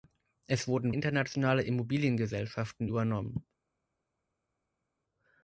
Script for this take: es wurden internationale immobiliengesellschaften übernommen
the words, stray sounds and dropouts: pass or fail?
pass